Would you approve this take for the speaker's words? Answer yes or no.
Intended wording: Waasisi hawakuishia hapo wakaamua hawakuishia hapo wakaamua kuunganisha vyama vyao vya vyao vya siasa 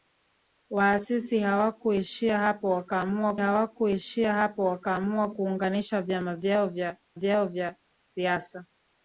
yes